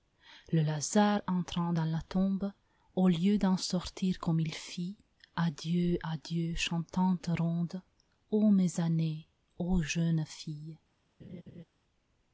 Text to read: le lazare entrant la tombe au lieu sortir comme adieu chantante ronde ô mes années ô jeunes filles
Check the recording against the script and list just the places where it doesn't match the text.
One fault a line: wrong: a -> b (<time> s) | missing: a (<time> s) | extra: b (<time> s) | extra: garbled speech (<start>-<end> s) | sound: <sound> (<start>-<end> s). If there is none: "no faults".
extra: dans (1.7 s)
extra: d'en (3.4 s)
extra: il fit adieu (4.4 s)
sound: laugh (11.2-11.6 s)